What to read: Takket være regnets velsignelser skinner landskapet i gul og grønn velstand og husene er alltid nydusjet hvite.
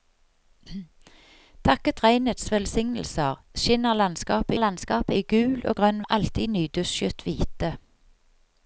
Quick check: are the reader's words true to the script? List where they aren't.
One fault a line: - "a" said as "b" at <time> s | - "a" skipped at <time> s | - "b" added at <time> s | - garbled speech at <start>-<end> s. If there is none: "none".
- "være" skipped at 2.0 s
- "landskapet" added at 4.6 s
- "velstand og husene" skipped at 6.0 s